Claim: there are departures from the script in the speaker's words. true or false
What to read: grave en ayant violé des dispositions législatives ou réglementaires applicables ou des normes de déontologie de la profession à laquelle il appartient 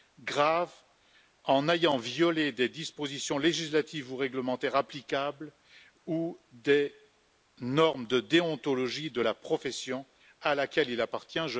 false